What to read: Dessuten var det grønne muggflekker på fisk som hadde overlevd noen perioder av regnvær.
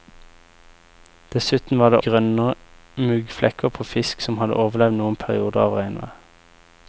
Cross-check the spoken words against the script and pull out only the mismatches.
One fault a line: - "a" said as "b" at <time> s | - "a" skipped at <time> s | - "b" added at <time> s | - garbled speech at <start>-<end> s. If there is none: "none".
none